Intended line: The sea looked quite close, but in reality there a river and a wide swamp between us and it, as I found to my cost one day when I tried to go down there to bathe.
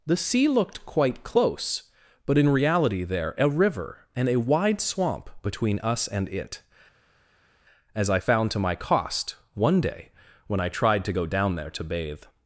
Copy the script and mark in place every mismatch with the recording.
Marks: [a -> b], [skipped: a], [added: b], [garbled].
The sea looked quite close, but in reality there a river and a wide swamp between us and it, as I found to my cost one day when I tried to go down there to bathe.